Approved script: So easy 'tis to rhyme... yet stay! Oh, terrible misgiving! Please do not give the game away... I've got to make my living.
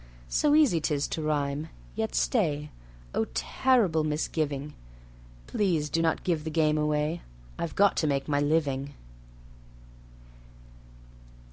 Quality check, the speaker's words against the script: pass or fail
pass